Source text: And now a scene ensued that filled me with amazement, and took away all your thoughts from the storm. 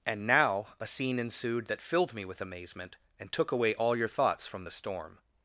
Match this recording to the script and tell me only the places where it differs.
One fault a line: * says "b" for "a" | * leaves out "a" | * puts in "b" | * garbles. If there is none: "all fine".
all fine